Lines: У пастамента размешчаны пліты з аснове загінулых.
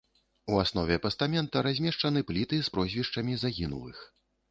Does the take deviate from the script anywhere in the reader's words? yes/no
yes